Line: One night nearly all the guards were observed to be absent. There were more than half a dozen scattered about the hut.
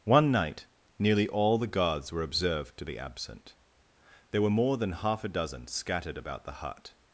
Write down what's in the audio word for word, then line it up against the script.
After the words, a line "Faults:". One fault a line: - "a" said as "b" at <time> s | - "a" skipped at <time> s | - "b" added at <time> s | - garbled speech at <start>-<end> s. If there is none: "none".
One night nearly all the guards were observed to be absent. There were more than half a dozen scattered about the hut.
Faults:
none